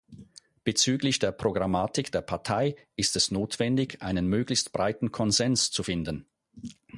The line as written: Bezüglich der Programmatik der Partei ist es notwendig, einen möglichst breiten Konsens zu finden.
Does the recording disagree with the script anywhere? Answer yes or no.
no